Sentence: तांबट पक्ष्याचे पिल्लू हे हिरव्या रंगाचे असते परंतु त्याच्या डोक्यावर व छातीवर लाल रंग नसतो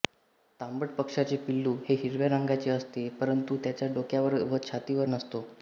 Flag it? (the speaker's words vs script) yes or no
yes